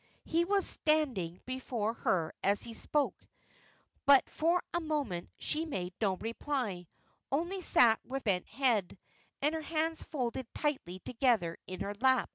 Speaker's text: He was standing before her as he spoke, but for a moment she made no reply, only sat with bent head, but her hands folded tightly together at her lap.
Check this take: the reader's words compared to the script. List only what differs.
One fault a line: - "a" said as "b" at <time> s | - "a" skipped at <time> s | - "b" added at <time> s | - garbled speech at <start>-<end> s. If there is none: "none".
- "but" said as "and" at 9.4 s
- "at" said as "in" at 11.7 s